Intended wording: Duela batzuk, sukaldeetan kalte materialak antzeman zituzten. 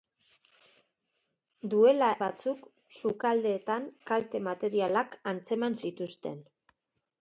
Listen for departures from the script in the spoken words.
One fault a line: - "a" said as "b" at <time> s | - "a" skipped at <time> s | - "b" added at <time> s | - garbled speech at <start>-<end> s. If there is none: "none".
none